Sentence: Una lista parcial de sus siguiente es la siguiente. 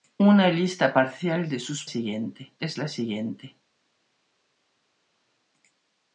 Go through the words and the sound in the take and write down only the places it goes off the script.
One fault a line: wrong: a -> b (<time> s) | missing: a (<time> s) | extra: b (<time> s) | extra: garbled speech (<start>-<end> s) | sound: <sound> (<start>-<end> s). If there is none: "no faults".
no faults